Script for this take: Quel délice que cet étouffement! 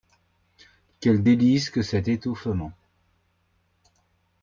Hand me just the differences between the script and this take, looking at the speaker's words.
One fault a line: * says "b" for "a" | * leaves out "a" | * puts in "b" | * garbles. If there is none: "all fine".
all fine